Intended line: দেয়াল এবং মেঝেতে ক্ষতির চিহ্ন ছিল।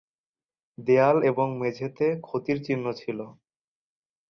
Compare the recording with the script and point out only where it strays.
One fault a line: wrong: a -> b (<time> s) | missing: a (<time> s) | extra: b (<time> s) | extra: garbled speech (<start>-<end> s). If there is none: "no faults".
no faults